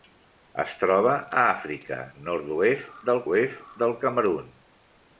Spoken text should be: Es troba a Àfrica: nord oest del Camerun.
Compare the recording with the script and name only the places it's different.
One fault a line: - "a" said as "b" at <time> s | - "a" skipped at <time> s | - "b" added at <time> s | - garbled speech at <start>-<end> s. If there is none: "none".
- "oest del" added at 3.3 s